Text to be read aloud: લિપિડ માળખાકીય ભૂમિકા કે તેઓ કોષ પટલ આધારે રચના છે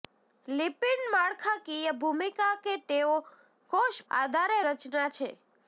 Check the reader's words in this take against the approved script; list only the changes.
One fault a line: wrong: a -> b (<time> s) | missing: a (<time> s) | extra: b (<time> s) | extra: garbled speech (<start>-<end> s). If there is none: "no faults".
missing: પટલ (4.0 s)